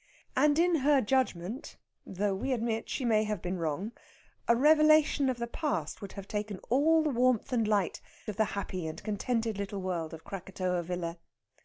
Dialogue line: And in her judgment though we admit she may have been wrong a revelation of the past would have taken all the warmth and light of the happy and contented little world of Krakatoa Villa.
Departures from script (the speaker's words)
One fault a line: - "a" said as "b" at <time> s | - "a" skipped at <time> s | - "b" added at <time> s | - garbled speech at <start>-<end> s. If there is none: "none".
none